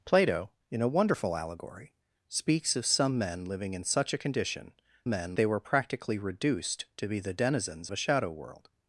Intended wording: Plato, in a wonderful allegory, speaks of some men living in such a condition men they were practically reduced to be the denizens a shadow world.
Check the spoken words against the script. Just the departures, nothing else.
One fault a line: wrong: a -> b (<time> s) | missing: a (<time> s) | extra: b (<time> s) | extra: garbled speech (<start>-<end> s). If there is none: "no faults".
no faults